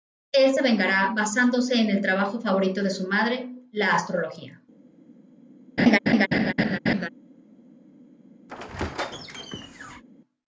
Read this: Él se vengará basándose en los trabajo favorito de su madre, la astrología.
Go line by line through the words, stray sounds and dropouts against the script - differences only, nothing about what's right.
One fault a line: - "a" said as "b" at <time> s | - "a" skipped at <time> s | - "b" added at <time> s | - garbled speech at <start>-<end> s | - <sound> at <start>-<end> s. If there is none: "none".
- "los" said as "el" at 1.9 s
- laugh at 5.8-7.1 s
- squeak at 8.5-10.0 s